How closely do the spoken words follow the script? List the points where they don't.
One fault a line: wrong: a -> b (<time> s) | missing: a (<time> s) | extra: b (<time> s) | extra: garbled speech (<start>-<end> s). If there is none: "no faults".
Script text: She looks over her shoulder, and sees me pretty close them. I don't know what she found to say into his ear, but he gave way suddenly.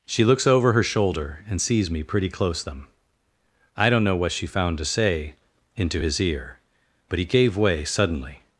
no faults